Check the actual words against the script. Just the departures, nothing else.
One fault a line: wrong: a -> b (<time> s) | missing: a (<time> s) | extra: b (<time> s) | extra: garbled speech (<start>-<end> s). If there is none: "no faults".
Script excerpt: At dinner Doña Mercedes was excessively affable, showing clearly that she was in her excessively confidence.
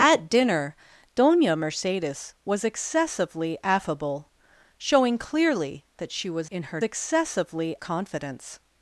no faults